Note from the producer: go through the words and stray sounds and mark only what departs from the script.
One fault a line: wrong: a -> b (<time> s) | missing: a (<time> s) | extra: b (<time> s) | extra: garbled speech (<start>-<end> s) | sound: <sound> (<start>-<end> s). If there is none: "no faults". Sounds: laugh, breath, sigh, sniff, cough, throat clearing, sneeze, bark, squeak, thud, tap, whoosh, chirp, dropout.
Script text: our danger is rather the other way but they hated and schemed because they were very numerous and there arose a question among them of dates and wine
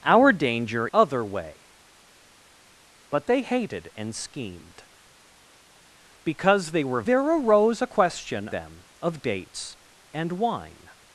missing: is rather the (0.9 s)
missing: very numerous and (7.0 s)
missing: among (8.5 s)